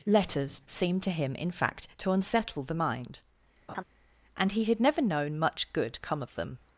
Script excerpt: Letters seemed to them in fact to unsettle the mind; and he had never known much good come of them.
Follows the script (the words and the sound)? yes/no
no